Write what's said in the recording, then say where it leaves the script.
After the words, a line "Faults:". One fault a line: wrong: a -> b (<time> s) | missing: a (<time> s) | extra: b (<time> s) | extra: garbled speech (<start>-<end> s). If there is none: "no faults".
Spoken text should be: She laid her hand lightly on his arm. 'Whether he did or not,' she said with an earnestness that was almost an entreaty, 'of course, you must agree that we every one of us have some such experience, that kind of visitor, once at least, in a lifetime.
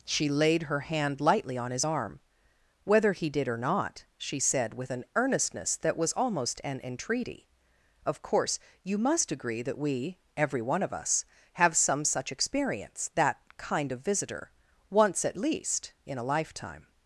She laid her hand lightly on his arm. 'Whether he did or not,' she said with an earnestness that was almost an entreaty, 'of course, you must agree that we every one of us have some such experience, that kind of visitor, once at least, in a lifetime.
Faults:
no faults